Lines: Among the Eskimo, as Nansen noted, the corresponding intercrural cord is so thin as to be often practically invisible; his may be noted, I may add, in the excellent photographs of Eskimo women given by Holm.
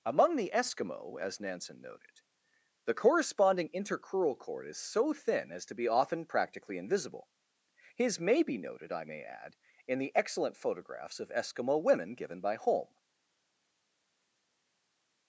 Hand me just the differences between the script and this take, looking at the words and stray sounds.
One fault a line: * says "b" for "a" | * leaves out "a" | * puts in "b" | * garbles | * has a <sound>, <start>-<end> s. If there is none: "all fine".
all fine